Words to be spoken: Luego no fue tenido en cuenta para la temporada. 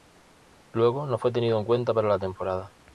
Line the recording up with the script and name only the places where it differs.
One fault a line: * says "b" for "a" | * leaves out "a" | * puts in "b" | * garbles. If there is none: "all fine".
all fine